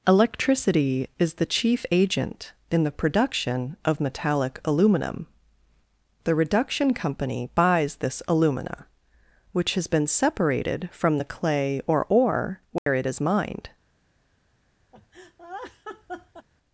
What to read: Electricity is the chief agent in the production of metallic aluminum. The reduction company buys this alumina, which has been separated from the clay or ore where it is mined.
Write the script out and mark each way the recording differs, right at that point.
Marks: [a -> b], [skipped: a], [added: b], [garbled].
Electricity is the chief agent in the production of metallic aluminum. The reduction company buys this alumina, which has been separated from the clay or ore where it is mined.